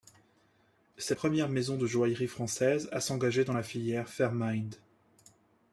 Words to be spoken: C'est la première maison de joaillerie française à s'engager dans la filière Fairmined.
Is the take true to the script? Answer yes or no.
no